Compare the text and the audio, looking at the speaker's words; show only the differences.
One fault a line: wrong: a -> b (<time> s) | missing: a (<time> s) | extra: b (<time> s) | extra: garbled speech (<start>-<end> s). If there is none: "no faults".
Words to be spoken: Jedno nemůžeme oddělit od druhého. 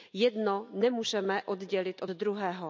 no faults